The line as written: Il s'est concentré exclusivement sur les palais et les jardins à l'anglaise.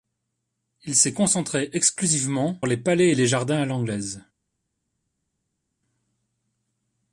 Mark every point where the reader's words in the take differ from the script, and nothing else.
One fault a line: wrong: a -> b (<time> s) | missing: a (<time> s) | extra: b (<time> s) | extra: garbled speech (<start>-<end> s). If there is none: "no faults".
missing: sur (2.6 s)